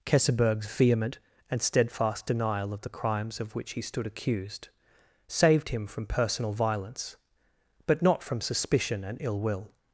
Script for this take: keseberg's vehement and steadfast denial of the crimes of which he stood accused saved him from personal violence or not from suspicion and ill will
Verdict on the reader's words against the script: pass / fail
fail